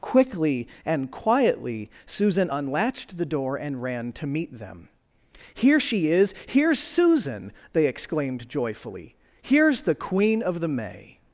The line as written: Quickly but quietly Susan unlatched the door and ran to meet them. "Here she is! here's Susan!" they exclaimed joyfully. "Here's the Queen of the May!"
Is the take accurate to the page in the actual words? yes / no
no